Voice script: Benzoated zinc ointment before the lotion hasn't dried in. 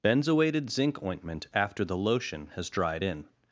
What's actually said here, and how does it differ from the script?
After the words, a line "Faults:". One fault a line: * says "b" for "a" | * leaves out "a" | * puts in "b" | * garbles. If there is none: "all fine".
Benzoated zinc ointment after the lotion has dried in.
Faults:
* says "after" for "before"
* says "has" for "hasn't"